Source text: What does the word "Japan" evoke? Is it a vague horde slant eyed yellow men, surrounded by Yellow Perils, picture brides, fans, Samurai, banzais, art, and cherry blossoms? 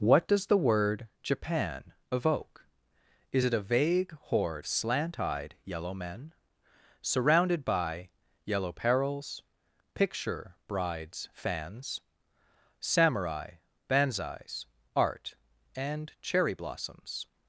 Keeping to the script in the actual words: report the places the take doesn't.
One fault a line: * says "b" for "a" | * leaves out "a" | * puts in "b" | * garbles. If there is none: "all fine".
all fine